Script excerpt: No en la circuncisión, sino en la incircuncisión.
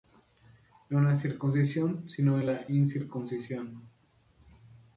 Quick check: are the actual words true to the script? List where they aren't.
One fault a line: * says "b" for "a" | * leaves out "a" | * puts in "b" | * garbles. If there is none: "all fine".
all fine